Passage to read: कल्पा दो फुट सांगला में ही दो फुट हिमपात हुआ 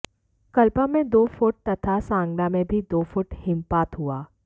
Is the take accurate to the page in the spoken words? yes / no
no